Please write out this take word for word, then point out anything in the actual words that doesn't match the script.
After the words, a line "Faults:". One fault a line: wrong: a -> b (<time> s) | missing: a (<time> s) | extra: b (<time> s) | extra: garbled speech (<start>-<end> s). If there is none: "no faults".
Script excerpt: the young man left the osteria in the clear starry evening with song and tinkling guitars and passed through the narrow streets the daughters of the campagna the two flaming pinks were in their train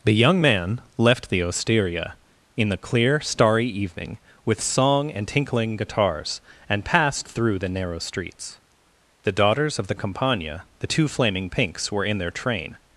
the young man left the osteria in the clear starry evening with song and tinkling guitars and passed through the narrow streets the daughters of the campagna the two flaming pinks were in their train
Faults:
no faults